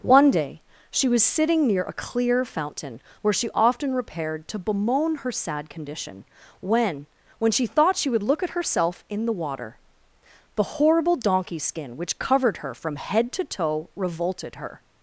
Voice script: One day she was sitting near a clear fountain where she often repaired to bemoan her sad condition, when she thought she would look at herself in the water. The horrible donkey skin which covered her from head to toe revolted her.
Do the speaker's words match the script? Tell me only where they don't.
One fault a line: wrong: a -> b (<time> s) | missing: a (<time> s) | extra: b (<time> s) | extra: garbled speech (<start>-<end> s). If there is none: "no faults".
extra: when (7.4 s)